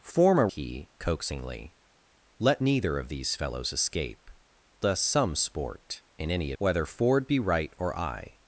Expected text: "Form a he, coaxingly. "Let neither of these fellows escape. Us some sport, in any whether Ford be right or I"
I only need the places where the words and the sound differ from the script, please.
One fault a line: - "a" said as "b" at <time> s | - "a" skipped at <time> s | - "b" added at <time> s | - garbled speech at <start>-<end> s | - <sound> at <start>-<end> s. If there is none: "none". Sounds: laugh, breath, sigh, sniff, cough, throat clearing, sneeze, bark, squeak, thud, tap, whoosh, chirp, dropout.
none